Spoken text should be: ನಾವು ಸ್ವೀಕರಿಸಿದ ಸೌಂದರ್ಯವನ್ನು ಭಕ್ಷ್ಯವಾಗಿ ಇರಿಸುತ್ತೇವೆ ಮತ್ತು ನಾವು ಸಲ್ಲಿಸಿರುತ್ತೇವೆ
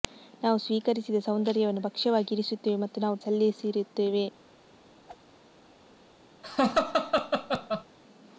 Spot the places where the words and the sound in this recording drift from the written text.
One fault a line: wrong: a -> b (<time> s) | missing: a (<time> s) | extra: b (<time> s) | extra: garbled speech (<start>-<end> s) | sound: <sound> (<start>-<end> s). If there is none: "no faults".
sound: whoosh (5.1-5.2 s)
sound: laugh (6.4-7.8 s)